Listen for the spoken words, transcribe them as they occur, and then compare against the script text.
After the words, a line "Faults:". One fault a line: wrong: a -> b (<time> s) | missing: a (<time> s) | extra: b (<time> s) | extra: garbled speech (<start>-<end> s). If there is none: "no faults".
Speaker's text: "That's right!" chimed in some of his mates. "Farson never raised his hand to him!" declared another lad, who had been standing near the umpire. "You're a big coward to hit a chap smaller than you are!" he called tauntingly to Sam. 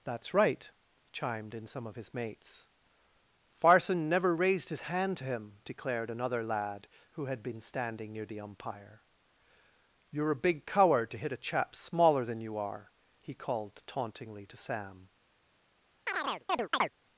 "That's right!" chimed in some of his mates. "Farson never raised his hand to him!" declared another lad, who had been standing near the umpire. "You're a big coward to hit a chap smaller than you are!" he called tauntingly to Sam.
Faults:
no faults